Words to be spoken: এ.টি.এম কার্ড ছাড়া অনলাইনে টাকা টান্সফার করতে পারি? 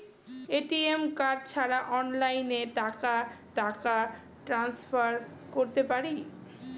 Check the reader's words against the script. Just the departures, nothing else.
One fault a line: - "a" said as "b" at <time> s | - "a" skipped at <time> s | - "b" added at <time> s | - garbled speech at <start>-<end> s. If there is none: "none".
- "টাকা" added at 3.6 s